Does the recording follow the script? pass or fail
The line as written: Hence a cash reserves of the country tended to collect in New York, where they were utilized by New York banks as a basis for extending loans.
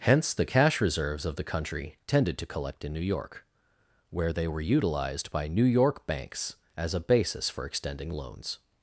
fail